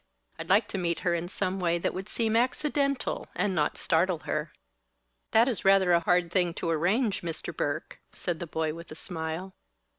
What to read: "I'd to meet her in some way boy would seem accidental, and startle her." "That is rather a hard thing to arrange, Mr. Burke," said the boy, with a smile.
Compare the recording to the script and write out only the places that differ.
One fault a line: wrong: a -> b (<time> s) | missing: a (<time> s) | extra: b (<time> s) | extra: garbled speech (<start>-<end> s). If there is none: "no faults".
extra: like (0.5 s)
wrong: boy -> that (1.8 s)
extra: not (3.5 s)